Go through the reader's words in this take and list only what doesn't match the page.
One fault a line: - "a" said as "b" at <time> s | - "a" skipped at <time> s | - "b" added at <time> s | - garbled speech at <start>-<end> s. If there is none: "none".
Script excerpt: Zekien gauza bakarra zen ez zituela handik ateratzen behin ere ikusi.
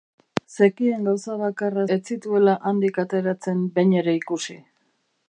- "zen" skipped at 1.8 s